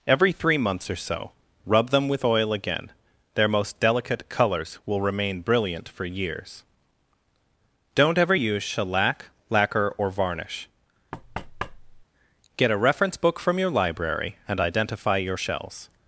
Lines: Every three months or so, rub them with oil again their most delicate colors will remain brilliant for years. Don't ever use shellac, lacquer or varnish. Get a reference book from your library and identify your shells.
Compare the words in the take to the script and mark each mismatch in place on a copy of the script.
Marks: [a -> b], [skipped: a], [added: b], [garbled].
Every three months or so, rub them with oil again their most delicate colors will remain brilliant for years. Don't ever use shellac, lacquer or varnish. Get a reference book from your library and identify your shells.